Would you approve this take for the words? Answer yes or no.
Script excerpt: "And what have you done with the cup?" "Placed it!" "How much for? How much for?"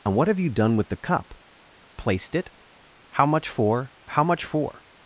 yes